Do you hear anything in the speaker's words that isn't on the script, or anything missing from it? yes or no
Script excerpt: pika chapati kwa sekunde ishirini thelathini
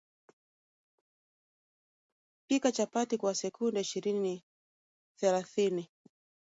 no